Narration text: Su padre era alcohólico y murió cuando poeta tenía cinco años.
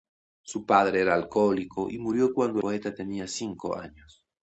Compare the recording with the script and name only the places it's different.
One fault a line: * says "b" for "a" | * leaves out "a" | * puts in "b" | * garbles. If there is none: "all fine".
all fine